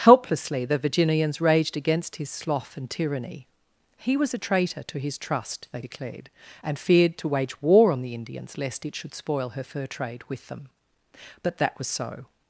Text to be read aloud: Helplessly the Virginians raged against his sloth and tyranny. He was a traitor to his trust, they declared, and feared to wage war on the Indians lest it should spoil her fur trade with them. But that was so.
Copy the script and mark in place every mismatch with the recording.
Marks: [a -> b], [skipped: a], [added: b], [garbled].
Helplessly the Virginians raged against his sloth and tyranny. He was a traitor to his trust, they declared, and feared to wage war on the Indians lest it should spoil her fur trade with them. But that was so.